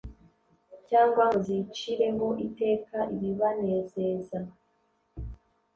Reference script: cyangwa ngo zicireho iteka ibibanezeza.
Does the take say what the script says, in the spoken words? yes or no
yes